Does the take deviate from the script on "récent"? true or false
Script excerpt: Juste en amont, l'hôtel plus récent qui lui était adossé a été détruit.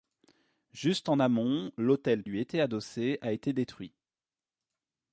true